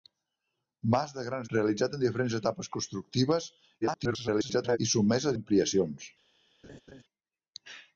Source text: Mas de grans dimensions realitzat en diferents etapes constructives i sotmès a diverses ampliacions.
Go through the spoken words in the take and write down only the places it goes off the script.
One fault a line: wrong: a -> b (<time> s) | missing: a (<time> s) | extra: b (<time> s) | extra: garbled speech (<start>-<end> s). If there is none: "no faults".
missing: dimensions (1.5 s)
extra: garbled speech (3.8-4.8 s)
missing: diverses (5.4 s)